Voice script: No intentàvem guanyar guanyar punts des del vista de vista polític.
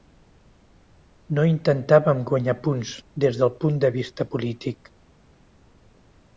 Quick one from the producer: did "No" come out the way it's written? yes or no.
yes